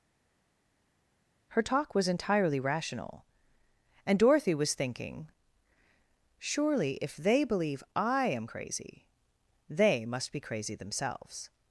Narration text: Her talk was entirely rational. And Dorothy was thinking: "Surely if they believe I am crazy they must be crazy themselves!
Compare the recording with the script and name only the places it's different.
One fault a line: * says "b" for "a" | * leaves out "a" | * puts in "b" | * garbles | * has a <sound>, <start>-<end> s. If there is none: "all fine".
all fine